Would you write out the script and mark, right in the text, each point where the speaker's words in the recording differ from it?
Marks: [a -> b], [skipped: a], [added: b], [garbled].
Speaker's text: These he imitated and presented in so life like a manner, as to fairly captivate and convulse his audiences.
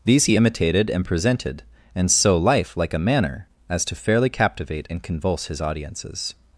These he imitated and presented [in -> and] so life like a manner, as to fairly captivate and convulse his audiences.